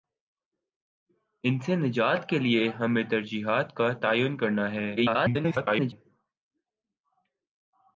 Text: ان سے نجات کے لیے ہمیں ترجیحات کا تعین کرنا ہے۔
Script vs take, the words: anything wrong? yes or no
yes